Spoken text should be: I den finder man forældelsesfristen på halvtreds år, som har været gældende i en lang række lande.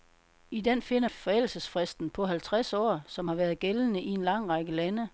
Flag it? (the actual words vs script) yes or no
yes